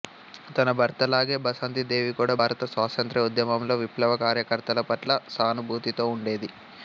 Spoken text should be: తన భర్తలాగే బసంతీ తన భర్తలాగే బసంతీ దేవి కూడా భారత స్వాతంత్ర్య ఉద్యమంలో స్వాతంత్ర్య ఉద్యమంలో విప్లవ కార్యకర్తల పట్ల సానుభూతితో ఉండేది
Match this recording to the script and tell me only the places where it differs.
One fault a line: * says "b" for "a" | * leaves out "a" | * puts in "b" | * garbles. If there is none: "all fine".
* leaves out "తన భర్తలాగే బసంతీ"
* leaves out "స్వాతంత్ర్య ఉద్యమంలో"